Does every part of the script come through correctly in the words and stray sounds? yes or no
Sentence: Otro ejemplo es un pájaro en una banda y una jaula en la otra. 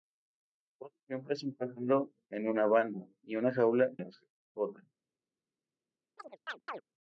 no